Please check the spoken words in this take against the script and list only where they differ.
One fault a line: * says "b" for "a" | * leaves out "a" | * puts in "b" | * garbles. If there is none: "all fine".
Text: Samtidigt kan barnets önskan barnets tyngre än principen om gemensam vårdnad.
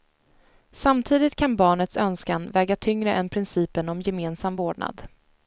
* says "väga" for "barnets"